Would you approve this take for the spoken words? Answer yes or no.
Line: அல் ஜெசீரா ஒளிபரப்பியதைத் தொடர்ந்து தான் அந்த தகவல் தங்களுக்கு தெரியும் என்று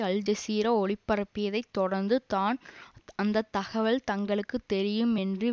yes